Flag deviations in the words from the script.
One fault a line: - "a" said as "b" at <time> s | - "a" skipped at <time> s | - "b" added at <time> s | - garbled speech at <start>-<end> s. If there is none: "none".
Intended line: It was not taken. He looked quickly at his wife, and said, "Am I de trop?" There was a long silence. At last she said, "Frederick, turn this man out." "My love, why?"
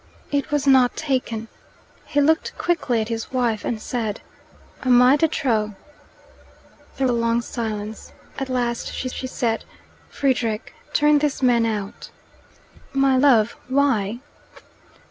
- "was" skipped at 7.0 s
- "she" added at 9.1 s